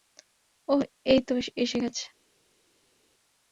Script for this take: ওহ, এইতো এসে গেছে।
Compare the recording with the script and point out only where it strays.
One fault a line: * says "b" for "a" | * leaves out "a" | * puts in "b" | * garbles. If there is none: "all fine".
all fine